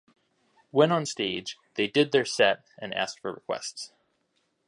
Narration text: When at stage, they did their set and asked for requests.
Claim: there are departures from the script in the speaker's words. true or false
true